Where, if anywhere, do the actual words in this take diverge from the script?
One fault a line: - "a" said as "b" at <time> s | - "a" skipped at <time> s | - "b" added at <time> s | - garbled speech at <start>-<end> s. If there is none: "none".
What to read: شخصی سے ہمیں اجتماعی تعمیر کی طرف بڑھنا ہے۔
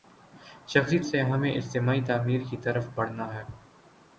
none